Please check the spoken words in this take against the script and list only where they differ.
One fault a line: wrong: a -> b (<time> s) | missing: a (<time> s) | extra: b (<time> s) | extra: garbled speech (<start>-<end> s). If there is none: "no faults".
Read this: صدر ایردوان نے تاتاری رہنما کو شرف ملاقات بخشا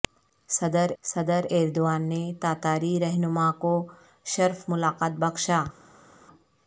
extra: صدر (1.0 s)